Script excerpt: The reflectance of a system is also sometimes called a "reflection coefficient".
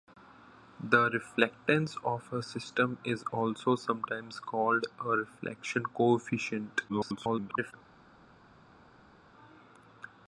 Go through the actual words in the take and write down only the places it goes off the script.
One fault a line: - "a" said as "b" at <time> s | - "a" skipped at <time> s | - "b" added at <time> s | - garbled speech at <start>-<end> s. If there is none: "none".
- garbled speech at 6.9-7.7 s